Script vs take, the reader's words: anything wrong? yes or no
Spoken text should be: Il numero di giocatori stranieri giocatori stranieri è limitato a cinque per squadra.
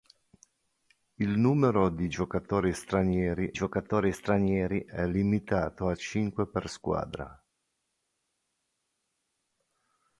no